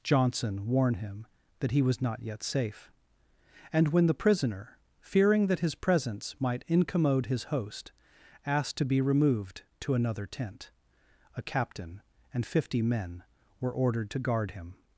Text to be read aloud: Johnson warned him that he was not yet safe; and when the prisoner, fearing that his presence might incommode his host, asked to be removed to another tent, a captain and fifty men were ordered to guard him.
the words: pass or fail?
fail